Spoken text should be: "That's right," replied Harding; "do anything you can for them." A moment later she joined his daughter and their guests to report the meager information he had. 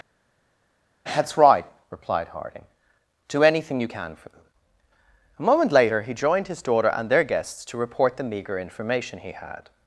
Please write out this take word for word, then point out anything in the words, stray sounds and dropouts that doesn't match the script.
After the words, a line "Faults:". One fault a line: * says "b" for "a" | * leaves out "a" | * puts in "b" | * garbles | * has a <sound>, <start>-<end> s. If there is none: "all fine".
"That's right," replied Harding; "do anything you can for them." A moment later he joined his daughter and their guests to report the meager information he had.
Faults:
* says "he" for "she"